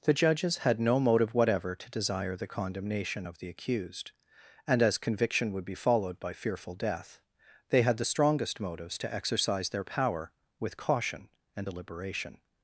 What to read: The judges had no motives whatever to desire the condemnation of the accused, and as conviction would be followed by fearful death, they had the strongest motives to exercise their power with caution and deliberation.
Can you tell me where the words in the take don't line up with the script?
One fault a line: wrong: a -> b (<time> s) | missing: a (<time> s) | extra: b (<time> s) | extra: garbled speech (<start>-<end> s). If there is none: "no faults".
wrong: motives -> motive (1.0 s)